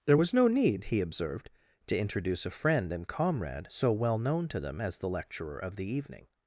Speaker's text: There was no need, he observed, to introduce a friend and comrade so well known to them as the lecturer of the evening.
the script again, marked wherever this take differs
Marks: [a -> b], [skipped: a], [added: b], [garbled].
There was no need, he observed, to introduce a friend and comrade so well known to them as the lecturer of the evening.